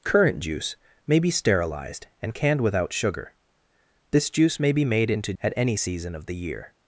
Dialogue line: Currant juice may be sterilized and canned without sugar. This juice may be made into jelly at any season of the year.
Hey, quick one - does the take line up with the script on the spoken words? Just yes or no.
no